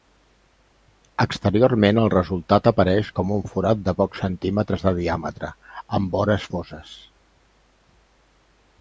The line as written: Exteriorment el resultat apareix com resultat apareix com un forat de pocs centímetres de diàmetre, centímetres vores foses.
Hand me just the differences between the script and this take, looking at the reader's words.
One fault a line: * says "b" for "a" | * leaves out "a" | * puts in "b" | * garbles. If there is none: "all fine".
* leaves out "resultat apareix com"
* says "amb" for "centímetres"